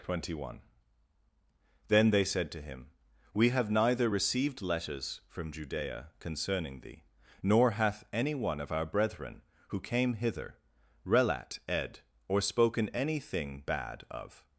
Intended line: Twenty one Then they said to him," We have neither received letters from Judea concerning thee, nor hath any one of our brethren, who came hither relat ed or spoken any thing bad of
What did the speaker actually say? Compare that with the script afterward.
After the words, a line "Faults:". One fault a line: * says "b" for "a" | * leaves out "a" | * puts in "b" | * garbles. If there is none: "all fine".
Twenty one Then they said to him," We have neither received letters from Judea concerning thee, nor hath any one of our brethren, who came hither relat ed or spoken any thing bad of
Faults:
all fine